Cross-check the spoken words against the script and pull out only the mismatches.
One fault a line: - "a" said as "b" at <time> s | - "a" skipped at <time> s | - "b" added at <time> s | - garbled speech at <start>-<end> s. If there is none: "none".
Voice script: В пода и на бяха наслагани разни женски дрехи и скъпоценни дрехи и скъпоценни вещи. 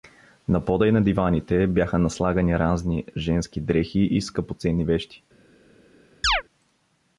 - "В" said as "На" at 0.5 s
- "диваните" added at 1.0 s
- "дрехи и скъпоценни" skipped at 4.8 s